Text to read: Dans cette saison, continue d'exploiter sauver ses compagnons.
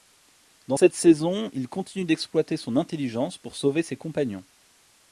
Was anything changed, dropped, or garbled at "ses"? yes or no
no